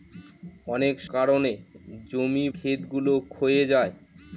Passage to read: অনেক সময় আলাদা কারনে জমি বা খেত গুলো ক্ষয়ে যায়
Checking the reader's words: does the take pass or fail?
fail